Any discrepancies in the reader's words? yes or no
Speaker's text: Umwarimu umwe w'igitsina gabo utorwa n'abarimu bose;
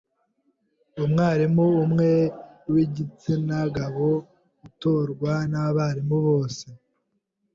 no